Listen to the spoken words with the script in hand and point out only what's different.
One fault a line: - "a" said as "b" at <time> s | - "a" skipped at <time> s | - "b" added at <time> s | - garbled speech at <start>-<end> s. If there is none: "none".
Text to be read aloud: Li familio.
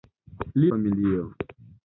none